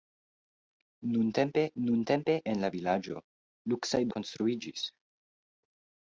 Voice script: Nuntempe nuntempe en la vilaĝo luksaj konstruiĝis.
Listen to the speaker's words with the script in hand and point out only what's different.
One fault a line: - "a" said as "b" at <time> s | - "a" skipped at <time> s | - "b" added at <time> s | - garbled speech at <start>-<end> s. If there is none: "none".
none